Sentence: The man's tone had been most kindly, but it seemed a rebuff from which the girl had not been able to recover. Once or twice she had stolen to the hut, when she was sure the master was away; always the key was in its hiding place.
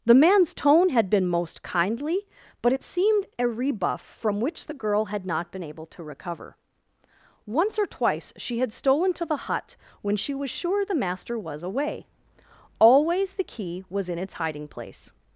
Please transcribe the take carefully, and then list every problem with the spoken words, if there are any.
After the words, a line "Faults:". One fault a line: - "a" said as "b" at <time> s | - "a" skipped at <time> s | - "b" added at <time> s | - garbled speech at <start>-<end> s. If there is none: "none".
The man's tone had been most kindly, but it seemed a rebuff from which the girl had not been able to recover. Once or twice she had stolen to the hut, when she was sure the master was away; always the key was in its hiding place.
Faults:
none